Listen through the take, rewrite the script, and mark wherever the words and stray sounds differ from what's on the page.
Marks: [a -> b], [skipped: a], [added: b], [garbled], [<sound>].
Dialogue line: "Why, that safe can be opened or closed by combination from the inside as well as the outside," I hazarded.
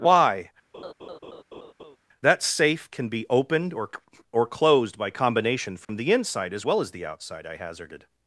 "Why, [laugh] that safe can be opened or [added: or] closed by combination from [dropout] the inside as well as the outside," I hazarded.